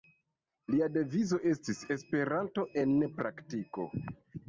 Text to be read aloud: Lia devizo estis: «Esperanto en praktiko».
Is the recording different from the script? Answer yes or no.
no